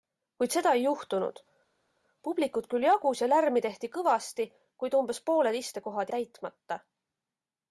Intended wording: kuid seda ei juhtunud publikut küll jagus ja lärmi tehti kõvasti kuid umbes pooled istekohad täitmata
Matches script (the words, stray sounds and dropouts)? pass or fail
pass